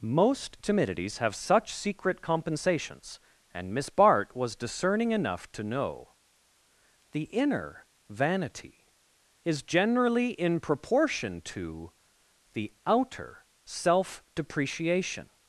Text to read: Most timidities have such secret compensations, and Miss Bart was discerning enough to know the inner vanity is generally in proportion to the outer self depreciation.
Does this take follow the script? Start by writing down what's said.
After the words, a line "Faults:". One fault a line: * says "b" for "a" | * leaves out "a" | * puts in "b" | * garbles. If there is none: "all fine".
Most timidities have such secret compensations, and Miss Bart was discerning enough to know the inner vanity is generally in proportion to the outer self depreciation.
Faults:
all fine